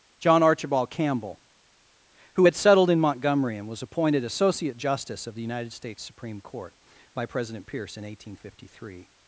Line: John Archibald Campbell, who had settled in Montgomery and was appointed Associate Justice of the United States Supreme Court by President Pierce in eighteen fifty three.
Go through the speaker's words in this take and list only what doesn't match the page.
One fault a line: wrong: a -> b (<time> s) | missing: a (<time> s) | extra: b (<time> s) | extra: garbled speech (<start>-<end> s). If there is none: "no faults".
no faults